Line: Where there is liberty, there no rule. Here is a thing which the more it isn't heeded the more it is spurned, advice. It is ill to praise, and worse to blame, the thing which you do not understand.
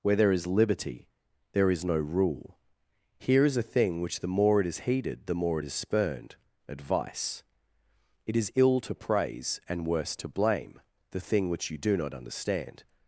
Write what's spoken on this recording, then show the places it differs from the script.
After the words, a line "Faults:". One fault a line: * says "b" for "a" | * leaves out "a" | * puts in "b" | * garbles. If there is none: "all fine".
Where there is liberty, there is no rule. Here is a thing which the more it is heeded the more it is spurned, advice. It is ill to praise, and worse to blame, the thing which you do not understand.
Faults:
* puts in "is"
* says "is" for "isn't"